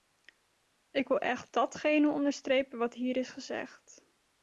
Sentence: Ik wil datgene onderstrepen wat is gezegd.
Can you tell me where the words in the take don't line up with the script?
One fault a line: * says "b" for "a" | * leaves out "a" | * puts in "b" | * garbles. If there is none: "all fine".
* puts in "echt"
* puts in "hier"